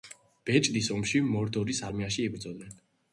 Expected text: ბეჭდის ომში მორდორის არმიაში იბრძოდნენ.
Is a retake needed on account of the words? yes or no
no